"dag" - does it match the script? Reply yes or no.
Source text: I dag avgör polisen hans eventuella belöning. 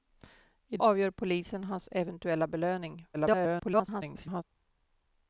no